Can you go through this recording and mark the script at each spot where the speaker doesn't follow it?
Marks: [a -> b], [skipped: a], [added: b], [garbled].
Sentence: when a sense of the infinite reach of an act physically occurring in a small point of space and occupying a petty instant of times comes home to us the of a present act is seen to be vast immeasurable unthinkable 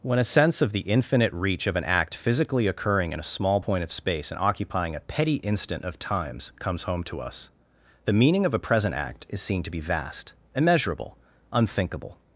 when a sense of the infinite reach of an act physically occurring in a small point of space and occupying a petty instant of times comes home to us the [added: meaning] of a present act is seen to be vast immeasurable unthinkable